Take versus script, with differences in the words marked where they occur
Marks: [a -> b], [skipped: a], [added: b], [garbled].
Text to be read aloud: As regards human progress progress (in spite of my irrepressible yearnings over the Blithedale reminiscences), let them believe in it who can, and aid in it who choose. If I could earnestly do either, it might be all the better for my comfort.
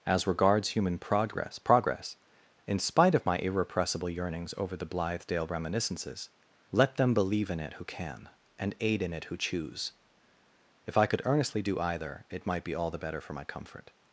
As regards human progress progress (in spite of my irrepressible yearnings over the Blithedale reminiscences), let them believe in it who can, and aid in it who choose. If I could earnestly do either, it might be all the better for my comfort.